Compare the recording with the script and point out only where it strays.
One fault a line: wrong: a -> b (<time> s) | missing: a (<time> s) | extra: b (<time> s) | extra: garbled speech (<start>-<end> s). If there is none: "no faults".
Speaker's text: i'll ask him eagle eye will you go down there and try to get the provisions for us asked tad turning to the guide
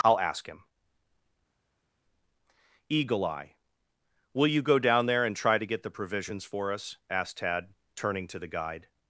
no faults